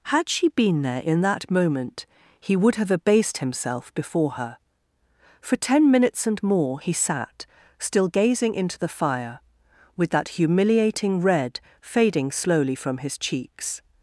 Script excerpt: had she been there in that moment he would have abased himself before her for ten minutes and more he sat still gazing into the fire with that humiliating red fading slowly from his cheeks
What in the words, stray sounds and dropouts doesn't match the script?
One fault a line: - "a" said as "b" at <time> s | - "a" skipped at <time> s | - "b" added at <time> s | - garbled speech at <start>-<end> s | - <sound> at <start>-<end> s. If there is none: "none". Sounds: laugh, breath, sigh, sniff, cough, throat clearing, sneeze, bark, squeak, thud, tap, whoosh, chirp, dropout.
none